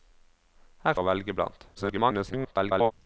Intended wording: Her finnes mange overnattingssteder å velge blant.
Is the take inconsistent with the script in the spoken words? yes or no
yes